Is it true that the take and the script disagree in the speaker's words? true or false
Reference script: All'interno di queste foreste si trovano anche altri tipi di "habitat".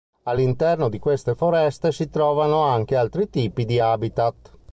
false